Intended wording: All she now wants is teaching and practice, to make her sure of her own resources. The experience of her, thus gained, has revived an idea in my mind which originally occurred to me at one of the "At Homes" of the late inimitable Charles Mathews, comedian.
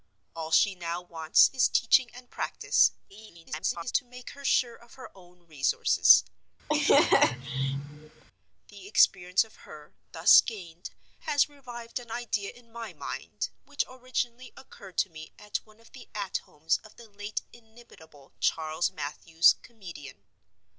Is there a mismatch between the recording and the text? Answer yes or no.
yes